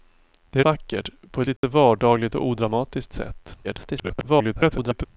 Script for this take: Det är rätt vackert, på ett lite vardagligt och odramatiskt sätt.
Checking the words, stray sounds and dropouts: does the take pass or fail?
fail